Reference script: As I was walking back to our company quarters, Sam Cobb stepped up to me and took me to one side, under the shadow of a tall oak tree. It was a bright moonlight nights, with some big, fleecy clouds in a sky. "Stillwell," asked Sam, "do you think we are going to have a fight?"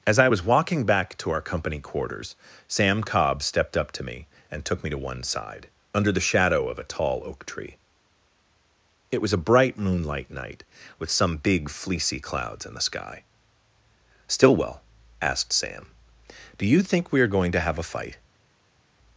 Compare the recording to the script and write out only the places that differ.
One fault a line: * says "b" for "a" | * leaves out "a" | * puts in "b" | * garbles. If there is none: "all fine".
* says "night" for "nights"
* says "the" for "a"